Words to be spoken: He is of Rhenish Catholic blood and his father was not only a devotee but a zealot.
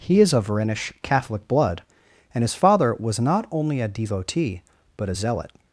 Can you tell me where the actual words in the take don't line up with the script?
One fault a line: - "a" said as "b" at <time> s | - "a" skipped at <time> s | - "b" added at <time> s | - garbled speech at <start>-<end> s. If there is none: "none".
none